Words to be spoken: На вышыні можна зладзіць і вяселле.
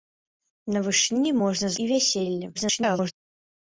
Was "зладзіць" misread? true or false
true